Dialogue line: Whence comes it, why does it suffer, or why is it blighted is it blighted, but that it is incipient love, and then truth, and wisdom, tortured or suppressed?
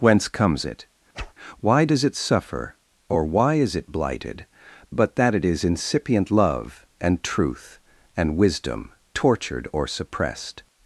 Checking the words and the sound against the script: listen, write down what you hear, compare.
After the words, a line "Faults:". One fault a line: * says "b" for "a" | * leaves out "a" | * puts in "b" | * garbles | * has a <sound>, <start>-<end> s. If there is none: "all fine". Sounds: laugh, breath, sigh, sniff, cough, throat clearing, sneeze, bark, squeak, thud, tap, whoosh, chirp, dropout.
Whence comes it, why does it suffer, or why is it blighted, but that it is incipient love, and truth, and wisdom, tortured or suppressed?
Faults:
* has a whoosh, 1.1-1.3 s
* leaves out "is it blighted"
* leaves out "then"